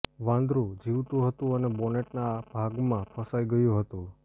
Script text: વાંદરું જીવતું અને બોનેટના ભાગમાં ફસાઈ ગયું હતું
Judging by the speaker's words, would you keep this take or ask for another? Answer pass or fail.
fail